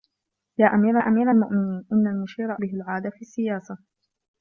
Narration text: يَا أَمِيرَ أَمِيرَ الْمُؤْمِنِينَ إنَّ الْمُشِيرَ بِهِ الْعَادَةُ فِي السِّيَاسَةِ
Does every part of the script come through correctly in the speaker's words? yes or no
yes